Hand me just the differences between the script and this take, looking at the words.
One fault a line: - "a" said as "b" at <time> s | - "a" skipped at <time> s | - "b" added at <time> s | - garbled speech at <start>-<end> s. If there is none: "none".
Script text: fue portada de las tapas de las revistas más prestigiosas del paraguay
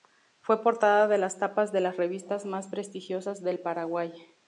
none